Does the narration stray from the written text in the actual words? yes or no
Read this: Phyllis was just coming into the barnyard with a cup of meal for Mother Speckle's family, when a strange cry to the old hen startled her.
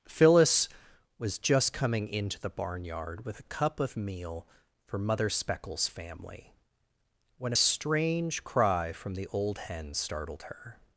yes